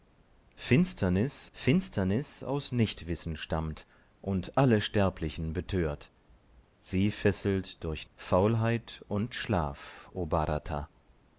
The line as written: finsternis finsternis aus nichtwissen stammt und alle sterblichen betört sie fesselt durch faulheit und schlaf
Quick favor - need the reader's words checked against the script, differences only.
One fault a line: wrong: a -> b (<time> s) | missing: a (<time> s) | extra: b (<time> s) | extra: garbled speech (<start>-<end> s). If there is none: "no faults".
no faults